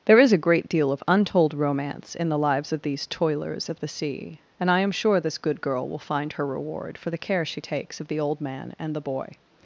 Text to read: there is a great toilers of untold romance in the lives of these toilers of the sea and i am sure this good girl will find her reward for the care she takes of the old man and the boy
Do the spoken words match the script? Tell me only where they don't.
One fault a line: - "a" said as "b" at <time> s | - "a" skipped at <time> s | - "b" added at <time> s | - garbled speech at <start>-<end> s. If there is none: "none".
- "toilers" said as "deal" at 0.7 s